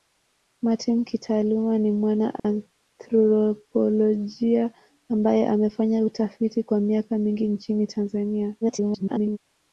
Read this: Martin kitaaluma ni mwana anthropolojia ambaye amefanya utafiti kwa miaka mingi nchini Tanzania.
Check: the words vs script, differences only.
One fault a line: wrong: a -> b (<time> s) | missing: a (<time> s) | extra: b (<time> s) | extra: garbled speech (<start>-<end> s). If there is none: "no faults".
extra: garbled speech (8.6-9.4 s)